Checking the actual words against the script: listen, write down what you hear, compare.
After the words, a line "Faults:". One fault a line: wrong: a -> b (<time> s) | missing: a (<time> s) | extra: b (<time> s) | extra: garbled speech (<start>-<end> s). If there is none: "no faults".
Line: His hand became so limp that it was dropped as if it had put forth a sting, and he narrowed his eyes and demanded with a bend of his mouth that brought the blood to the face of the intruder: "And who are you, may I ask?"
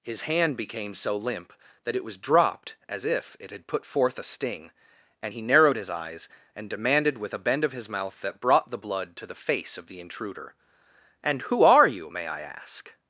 His hand became so limp that it was dropped as if it had put forth a sting, and he narrowed his eyes and demanded with a bend of his mouth that brought the blood to the face of the intruder: "And who are you, may I ask?"
Faults:
no faults